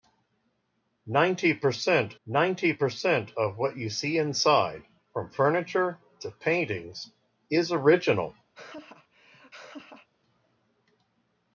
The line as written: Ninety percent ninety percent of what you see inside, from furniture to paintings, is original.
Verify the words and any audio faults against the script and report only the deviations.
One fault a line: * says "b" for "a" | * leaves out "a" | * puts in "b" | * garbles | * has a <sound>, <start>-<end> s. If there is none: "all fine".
* has a laugh, 8.5-10.1 s